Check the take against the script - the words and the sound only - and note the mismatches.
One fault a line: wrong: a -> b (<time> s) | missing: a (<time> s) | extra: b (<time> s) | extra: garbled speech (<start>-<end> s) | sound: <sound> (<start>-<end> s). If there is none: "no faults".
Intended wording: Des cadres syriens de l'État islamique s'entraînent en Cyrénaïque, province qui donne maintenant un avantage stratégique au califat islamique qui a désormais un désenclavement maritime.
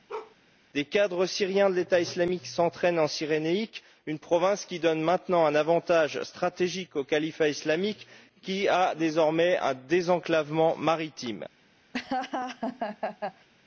sound: bark (0.1-0.4 s)
extra: une (4.1 s)
sound: laugh (11.9-13.5 s)